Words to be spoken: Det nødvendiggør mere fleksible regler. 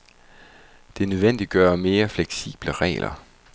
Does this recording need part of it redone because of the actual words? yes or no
no